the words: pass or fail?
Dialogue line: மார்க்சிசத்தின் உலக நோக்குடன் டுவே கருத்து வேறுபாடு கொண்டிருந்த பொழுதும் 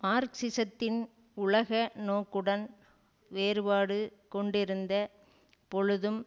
fail